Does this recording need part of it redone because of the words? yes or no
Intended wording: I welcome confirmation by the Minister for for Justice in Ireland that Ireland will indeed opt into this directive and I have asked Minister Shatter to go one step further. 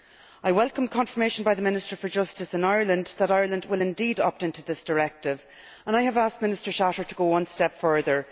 yes